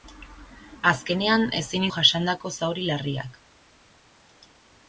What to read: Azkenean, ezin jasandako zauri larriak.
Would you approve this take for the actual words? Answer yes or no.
yes